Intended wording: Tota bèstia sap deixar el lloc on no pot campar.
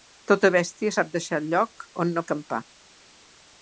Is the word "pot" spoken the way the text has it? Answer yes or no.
no